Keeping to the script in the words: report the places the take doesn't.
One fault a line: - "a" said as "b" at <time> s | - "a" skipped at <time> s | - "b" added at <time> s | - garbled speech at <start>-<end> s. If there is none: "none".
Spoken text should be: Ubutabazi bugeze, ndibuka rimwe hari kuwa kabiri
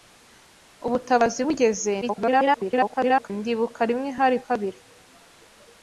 - garbled speech at 2.0-3.3 s
- "kuwa" skipped at 4.4 s